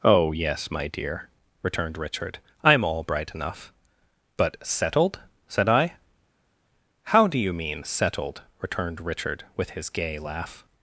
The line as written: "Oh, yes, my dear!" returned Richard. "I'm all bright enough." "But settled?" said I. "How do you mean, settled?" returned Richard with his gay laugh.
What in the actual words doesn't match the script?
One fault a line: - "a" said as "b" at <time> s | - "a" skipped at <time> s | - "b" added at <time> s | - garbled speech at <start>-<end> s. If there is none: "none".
none